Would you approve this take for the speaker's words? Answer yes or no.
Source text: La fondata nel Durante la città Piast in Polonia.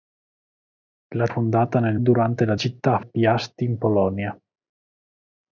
yes